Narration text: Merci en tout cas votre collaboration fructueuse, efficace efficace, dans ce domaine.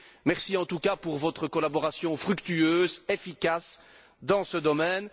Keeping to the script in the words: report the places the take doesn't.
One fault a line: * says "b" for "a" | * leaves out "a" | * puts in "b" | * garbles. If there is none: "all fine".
* puts in "pour"
* leaves out "efficace"